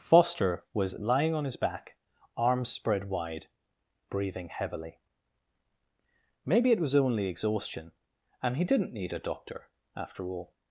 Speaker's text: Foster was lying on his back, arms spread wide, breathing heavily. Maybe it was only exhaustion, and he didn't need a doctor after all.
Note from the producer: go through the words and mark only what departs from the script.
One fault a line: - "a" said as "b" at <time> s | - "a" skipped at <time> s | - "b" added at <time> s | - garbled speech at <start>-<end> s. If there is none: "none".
none